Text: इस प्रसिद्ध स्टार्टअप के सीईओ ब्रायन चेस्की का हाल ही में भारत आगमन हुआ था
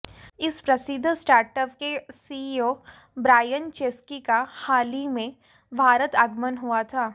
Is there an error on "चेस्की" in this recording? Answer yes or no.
no